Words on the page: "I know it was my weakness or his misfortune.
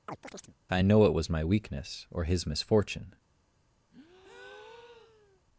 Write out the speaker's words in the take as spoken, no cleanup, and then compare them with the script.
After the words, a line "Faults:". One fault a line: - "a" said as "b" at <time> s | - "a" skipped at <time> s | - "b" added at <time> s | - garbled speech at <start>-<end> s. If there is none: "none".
"I know it was my weakness or his misfortune.
Faults:
none